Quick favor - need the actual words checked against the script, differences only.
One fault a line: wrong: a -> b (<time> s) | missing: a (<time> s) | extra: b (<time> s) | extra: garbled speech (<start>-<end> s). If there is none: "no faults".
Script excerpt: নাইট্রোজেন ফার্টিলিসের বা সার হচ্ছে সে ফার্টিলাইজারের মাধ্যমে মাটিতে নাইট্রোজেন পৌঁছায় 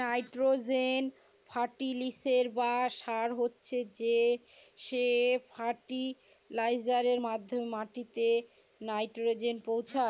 no faults